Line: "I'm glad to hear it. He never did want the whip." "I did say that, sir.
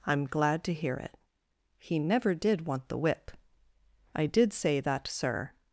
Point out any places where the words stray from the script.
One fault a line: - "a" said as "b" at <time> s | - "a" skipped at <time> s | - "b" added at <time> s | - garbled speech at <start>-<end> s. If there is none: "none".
none